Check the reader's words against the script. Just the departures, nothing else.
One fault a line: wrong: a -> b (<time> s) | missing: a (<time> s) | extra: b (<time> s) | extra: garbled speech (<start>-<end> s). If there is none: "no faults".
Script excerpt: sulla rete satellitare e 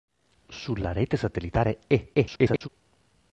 extra: garbled speech (2.1-2.7 s)